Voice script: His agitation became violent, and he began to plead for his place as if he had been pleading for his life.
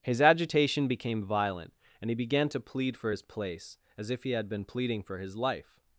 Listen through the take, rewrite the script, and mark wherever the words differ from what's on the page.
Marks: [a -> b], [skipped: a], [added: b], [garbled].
His agitation became violent, and he began to plead for his place as if he had been pleading for his life.